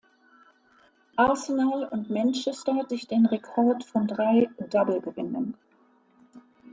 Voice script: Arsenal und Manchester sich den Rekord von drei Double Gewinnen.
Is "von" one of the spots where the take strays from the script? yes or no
no